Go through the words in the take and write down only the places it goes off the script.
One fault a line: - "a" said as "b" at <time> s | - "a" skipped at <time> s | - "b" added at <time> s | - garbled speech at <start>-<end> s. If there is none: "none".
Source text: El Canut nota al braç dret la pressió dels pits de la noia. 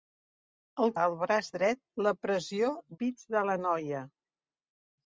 - "Canut nota" skipped at 0.9 s
- "dels" skipped at 2.7 s